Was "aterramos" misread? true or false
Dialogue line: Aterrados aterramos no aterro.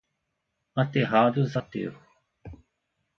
true